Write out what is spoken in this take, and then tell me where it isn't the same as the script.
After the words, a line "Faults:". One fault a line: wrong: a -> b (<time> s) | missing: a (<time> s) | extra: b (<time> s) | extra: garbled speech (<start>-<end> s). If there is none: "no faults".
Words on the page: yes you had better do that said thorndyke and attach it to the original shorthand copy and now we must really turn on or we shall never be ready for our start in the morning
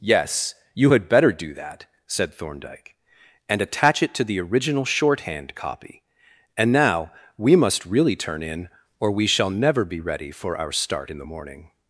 yes you had better do that said thorndyke and attach it to the original shorthand copy and now we must really turn in or we shall never be ready for our start in the morning
Faults:
wrong: on -> in (8.4 s)